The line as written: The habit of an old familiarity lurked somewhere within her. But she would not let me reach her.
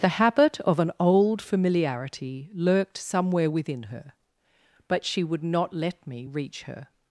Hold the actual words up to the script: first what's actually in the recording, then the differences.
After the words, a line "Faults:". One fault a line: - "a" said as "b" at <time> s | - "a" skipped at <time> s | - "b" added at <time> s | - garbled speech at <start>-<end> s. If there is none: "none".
The habit of an old familiarity lurked somewhere within her. But she would not let me reach her.
Faults:
none